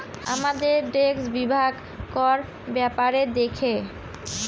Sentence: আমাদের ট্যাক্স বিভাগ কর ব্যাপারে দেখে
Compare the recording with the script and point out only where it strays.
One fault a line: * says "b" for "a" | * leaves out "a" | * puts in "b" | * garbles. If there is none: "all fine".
all fine